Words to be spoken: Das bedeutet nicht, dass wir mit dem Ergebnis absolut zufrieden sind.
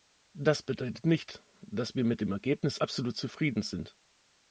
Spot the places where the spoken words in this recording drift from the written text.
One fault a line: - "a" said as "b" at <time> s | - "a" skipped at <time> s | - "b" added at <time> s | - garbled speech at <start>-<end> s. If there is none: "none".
none